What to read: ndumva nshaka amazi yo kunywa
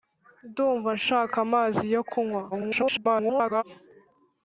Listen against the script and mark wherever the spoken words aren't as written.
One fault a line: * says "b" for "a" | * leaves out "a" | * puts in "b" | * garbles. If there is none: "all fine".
* garbles